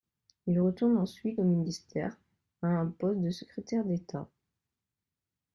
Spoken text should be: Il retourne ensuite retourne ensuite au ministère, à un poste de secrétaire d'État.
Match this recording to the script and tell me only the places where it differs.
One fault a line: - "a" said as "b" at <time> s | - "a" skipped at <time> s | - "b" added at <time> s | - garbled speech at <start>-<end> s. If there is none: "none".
- "retourne ensuite" skipped at 1.4 s